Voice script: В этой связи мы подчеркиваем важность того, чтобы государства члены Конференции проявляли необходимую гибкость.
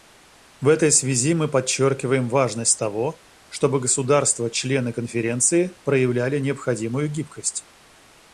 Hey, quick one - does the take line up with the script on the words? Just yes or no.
yes